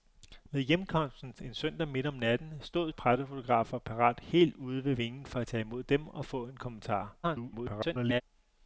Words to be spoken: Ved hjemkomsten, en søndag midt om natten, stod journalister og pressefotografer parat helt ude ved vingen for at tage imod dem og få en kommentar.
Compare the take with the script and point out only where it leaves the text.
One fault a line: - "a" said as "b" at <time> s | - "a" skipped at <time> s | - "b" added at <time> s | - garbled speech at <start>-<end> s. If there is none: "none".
- "journalister" skipped at 2.9 s
- garbled speech at 7.2-8.2 s